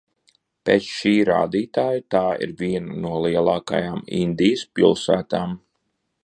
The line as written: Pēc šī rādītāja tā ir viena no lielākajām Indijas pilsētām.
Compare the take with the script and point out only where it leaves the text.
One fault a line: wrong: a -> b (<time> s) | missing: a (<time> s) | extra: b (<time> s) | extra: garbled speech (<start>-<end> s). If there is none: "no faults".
no faults